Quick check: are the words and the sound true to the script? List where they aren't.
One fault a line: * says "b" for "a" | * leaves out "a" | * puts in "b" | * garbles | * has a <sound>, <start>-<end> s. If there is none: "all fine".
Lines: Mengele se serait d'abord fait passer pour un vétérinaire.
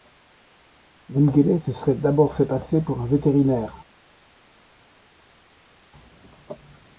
all fine